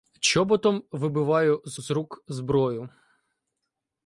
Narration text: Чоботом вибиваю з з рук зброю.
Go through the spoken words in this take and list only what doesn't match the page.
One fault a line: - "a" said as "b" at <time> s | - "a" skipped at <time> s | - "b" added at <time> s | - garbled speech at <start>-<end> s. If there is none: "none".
none